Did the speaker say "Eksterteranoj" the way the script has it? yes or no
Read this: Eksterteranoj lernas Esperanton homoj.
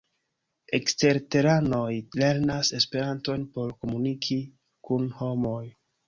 yes